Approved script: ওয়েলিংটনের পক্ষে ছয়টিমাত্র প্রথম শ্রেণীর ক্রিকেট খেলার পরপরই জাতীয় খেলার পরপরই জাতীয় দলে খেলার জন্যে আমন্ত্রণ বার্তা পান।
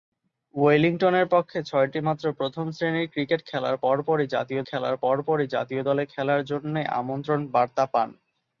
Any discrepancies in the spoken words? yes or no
no